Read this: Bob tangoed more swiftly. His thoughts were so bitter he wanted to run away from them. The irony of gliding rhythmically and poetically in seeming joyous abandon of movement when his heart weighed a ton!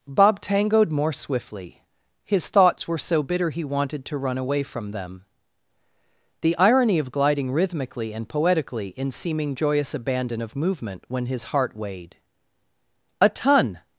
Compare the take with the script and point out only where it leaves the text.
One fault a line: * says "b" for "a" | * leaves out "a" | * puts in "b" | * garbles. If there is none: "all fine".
all fine